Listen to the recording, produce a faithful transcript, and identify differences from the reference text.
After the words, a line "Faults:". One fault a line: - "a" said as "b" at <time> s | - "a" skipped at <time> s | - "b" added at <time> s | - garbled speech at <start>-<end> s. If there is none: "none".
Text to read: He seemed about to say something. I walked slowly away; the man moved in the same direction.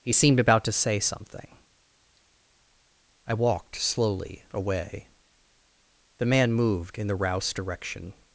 He seemed about to say something. I walked slowly away; the man moved in the rouse direction.
Faults:
- "same" said as "rouse" at 7.2 s